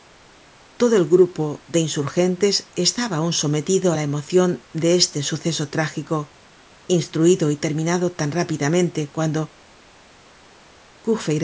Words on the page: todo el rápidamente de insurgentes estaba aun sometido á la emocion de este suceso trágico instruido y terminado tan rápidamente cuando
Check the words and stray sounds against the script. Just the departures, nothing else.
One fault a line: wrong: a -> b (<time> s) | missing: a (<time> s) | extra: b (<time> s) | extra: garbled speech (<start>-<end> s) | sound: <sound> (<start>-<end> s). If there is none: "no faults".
wrong: rápidamente -> grupo (1.1 s)